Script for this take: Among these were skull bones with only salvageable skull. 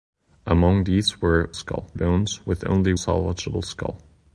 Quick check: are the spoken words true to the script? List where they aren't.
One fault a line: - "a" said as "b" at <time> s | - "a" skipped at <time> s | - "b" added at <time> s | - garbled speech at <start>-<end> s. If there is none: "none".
none